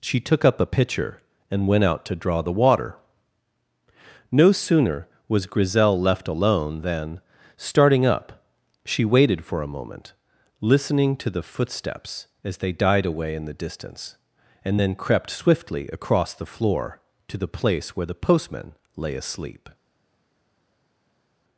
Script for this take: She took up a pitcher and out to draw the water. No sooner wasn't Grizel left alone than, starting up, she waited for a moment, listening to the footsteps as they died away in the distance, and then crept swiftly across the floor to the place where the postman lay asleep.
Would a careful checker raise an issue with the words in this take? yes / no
yes